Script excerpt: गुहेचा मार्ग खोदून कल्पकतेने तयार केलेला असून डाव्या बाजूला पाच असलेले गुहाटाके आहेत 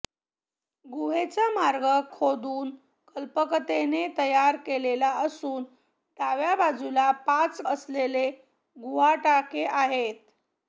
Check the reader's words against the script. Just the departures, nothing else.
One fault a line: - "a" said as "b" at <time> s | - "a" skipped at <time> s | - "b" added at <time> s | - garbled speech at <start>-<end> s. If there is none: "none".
none